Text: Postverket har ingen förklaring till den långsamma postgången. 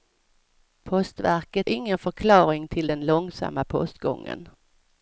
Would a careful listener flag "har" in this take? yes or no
yes